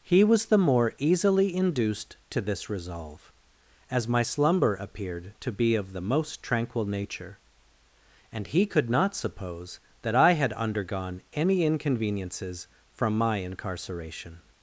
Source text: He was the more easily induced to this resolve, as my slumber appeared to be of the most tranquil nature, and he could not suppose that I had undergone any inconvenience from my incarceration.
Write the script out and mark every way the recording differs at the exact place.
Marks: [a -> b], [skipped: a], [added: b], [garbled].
He was the more easily induced to this resolve, as my slumber appeared to be of the most tranquil nature, and he could not suppose that I had undergone any [inconvenience -> inconveniences] from my incarceration.